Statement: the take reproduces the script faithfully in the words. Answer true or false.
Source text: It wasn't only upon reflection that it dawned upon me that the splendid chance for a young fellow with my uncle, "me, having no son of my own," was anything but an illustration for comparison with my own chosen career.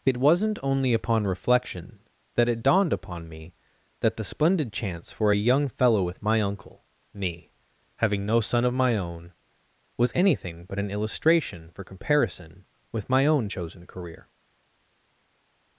true